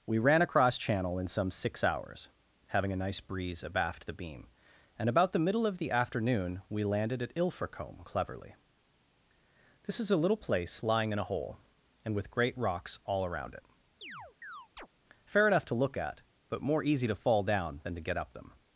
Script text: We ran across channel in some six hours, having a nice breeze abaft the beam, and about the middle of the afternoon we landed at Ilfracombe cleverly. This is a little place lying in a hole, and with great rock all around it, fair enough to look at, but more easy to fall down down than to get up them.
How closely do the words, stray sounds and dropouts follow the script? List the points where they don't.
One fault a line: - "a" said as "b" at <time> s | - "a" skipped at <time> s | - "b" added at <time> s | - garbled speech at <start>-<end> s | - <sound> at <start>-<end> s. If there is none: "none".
- "rock" said as "rocks" at 12.6 s
- chirp at 14.0-14.9 s
- "down" skipped at 17.8 s